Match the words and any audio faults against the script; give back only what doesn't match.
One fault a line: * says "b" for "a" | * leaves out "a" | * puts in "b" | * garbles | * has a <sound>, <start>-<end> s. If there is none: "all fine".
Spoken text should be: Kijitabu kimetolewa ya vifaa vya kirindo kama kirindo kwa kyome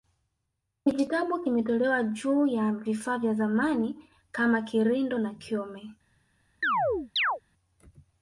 * puts in "juu"
* says "zamani" for "kirindo"
* says "na" for "kwa"
* has a chirp, 6.6-7.4 s